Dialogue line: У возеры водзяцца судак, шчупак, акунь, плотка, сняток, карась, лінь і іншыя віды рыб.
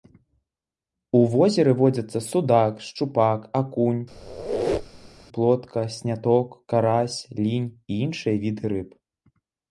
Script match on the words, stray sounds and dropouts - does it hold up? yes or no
no